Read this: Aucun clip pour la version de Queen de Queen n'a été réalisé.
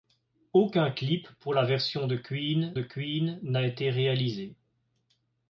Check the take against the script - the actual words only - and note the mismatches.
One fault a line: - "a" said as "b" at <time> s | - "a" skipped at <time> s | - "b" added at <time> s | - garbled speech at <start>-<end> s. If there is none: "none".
none